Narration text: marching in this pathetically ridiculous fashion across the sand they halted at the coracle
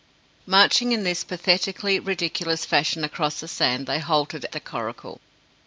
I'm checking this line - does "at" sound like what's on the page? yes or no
no